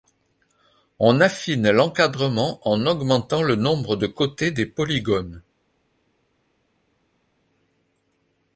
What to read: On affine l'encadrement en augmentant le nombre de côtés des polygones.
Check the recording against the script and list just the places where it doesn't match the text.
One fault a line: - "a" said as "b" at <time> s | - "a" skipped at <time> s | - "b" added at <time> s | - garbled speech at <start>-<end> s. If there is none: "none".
none